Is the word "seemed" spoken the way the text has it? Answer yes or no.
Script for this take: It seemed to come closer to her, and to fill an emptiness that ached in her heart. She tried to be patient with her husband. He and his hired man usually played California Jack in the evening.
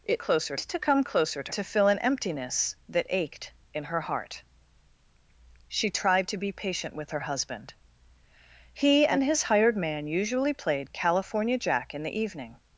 no